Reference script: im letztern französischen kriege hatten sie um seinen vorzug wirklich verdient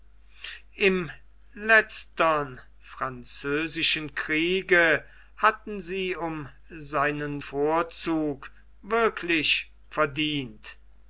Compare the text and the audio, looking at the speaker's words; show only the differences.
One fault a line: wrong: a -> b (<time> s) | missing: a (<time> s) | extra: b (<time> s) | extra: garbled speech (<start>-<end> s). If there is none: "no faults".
no faults